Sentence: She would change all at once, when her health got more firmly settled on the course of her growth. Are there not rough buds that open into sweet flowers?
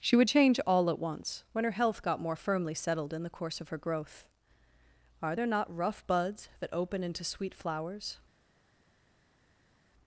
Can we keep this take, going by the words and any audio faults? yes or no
no